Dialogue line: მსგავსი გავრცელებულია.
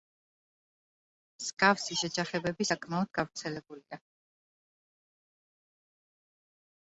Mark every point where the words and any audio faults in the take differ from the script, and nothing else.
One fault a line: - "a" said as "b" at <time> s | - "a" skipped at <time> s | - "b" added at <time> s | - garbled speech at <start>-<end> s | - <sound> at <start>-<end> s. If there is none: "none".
- "შეჯახებები საკმაოდ" added at 2.0 s